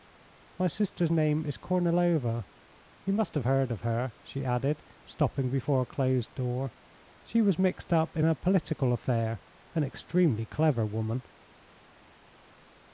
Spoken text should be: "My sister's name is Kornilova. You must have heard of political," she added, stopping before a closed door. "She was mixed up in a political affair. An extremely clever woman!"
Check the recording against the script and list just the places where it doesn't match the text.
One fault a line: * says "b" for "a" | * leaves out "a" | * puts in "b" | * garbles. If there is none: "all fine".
* says "her" for "political"